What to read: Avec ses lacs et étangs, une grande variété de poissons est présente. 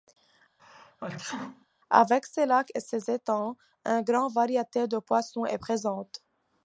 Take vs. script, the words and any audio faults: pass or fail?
fail